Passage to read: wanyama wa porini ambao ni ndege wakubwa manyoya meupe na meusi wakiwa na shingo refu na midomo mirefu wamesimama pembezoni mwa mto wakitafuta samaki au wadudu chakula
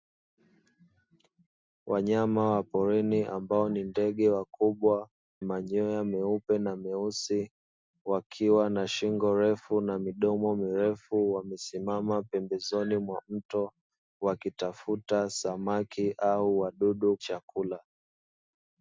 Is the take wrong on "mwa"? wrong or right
right